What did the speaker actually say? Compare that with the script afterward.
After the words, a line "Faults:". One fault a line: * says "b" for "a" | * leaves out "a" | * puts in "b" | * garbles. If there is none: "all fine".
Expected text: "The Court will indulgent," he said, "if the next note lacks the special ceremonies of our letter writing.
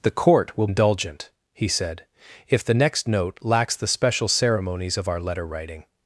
"The Court will indulgent," he said, "if the next note lacks the special ceremonies of our letter writing.
Faults:
all fine